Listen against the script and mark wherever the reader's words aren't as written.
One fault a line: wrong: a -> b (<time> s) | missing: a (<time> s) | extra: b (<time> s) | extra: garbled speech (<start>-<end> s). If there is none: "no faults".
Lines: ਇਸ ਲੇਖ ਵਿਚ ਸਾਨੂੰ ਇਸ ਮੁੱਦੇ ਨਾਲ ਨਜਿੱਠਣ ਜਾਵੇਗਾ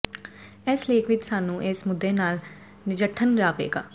no faults